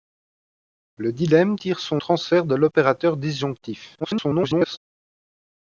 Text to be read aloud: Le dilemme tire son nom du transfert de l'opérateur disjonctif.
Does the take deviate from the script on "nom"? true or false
true